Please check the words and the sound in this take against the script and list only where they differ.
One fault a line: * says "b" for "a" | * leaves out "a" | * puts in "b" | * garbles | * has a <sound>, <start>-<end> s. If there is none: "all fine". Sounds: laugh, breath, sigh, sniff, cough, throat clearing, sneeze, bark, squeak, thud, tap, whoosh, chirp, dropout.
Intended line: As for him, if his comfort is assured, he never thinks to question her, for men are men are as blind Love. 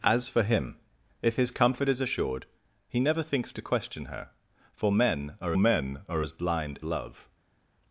all fine